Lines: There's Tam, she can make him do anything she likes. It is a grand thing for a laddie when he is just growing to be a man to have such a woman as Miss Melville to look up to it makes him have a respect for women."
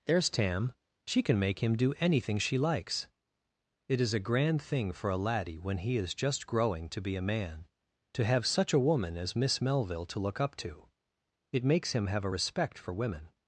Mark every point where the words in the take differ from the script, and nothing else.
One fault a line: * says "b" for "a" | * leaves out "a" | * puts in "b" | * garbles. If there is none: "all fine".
all fine